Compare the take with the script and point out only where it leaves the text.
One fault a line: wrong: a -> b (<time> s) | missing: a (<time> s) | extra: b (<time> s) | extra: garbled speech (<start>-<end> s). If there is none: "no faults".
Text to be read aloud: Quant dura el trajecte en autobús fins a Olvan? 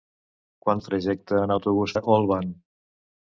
missing: dura (0.8 s)
missing: fins (2.0 s)